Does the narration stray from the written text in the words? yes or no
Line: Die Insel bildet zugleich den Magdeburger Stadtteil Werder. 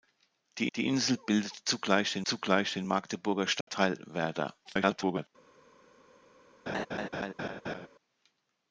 yes